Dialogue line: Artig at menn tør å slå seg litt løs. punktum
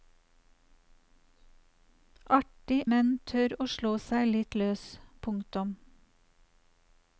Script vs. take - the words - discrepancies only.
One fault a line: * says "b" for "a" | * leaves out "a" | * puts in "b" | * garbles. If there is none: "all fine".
* leaves out "at"